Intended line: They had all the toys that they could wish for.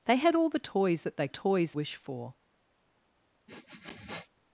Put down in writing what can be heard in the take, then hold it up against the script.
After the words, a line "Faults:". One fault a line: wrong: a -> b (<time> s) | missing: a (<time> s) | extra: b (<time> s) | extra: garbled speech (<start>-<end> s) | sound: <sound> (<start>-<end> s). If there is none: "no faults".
They had all the toys that they toys wish for.
Faults:
wrong: could -> toys (1.3 s)
sound: sniff (3.5-4.3 s)